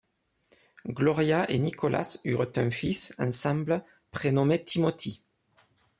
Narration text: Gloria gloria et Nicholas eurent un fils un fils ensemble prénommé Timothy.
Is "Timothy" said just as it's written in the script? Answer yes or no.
yes